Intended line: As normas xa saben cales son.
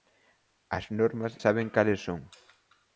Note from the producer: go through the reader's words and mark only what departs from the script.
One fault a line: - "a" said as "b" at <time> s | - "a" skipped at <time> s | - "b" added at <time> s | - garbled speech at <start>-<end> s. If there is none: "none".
- "xa" skipped at 1.3 s